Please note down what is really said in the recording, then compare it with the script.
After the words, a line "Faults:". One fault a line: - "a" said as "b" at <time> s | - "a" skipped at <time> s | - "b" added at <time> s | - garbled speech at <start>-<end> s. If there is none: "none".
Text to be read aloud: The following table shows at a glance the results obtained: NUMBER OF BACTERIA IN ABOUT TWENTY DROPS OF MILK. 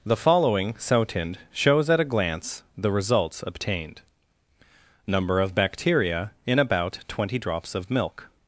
The following sotind shows at a glance the results obtained: NUMBER OF BACTERIA IN ABOUT TWENTY DROPS OF MILK.
Faults:
- "table" said as "sotind" at 0.8 s